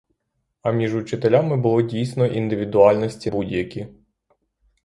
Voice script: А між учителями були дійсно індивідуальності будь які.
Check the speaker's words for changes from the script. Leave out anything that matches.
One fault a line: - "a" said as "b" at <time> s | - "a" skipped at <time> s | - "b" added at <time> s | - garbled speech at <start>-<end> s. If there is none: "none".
none